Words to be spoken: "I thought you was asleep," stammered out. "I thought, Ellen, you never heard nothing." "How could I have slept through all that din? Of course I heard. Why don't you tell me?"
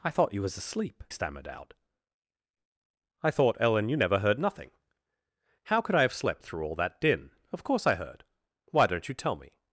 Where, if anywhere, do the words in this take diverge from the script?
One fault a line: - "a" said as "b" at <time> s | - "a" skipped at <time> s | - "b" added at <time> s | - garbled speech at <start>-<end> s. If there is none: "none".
none